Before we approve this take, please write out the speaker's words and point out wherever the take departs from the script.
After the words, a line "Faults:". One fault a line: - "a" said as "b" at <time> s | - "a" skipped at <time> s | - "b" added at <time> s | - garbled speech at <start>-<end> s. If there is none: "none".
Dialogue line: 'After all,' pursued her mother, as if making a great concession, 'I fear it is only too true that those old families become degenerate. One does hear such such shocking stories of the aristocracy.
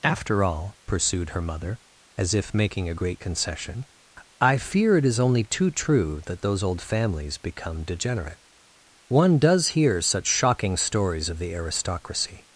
'After all,' pursued her mother, as if making a great concession, 'I fear it is only too true that those old families become degenerate. One does hear such shocking stories of the aristocracy.
Faults:
- "such" skipped at 10.3 s